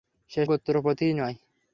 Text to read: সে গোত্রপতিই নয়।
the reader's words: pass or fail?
pass